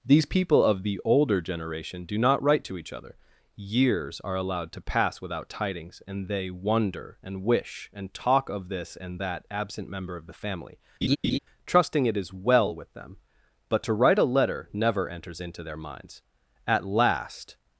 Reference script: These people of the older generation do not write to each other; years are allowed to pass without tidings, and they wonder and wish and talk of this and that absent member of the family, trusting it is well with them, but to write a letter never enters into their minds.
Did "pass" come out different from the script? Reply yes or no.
no